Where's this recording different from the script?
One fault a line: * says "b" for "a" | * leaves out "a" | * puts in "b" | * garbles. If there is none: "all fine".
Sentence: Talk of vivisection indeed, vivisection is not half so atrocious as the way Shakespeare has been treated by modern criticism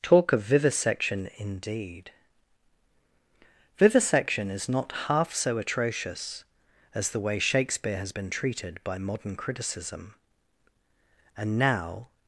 * puts in "And now"